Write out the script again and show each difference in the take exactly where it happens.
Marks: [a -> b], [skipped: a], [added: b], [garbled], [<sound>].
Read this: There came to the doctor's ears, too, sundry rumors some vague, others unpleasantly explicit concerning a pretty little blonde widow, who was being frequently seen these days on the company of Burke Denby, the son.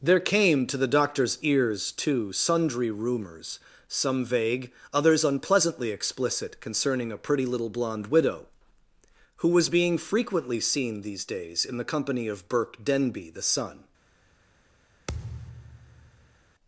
There came to the doctor's ears, too, sundry rumors some vague, others unpleasantly explicit concerning a pretty little blonde widow, who was being frequently seen these days [on -> in] the company of Burke Denby, the son. [thud]